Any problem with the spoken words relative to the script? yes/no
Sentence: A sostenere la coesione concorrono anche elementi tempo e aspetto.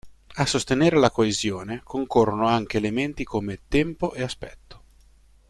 yes